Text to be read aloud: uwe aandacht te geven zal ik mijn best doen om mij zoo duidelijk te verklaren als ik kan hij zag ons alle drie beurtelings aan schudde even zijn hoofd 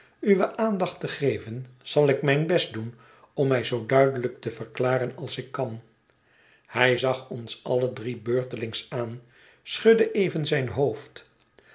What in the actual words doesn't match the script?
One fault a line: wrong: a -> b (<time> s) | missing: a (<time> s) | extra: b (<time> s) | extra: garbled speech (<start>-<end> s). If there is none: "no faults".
no faults